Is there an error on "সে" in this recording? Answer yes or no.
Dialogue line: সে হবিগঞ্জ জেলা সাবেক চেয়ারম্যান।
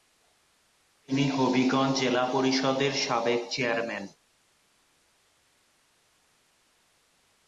yes